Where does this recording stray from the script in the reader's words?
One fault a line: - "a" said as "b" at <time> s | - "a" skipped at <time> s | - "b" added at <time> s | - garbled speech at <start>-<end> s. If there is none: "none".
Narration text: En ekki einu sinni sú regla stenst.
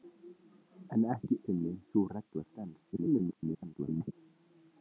- "einu" skipped at 1.4 s
- garbled speech at 2.9-4.1 s